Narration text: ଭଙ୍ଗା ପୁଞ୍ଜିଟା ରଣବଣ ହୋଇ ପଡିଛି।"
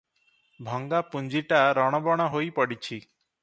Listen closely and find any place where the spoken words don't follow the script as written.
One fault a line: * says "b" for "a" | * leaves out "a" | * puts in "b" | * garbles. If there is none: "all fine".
all fine